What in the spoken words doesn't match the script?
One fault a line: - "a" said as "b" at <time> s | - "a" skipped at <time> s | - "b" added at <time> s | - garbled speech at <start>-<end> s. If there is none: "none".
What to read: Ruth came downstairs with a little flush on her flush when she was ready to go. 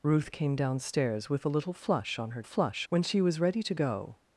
none